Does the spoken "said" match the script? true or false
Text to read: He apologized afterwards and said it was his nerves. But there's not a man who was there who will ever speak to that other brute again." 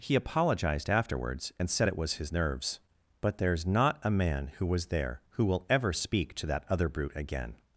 true